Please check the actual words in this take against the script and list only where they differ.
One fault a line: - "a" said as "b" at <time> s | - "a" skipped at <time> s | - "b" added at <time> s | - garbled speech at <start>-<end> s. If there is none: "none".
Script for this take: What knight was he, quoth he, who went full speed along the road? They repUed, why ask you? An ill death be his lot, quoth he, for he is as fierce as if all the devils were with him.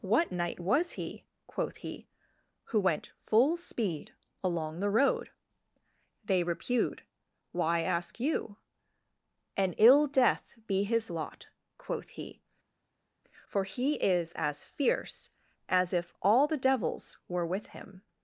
none